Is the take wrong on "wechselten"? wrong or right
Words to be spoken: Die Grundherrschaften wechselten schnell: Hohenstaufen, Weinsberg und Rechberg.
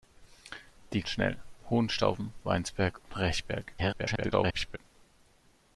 wrong